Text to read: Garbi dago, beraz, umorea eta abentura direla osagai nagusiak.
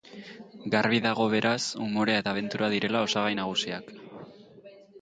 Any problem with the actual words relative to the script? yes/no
no